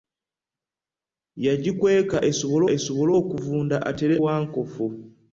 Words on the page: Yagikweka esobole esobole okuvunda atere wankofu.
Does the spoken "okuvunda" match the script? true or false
true